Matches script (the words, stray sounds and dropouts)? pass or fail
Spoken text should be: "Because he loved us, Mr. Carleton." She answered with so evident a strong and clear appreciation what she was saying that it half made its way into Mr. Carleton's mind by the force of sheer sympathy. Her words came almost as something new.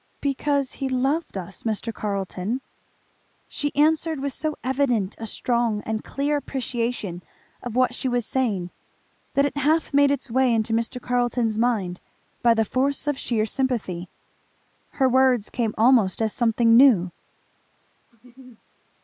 fail